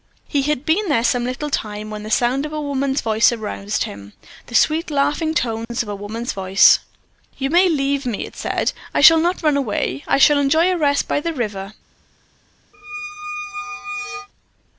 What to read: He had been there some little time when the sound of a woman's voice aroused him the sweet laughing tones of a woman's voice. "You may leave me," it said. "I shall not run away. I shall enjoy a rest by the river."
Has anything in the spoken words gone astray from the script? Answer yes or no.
no